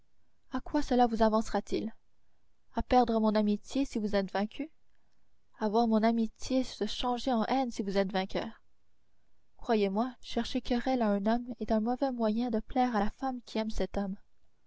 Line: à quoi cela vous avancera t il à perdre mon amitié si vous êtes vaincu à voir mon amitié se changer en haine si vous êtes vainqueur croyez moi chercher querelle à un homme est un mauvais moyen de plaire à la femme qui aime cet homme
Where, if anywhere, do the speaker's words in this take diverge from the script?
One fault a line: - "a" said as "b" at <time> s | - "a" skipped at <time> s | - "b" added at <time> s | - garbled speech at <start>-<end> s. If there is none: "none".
none